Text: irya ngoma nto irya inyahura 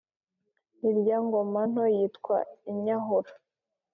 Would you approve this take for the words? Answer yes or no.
no